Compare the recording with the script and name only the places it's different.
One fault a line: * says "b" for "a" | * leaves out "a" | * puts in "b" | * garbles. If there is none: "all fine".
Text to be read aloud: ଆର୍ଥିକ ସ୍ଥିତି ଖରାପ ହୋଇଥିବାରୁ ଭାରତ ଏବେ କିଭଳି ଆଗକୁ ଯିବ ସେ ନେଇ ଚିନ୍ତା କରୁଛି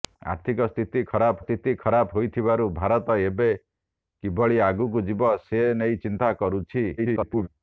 * puts in "ସ୍ଥିତି ଖରାପ"
* garbles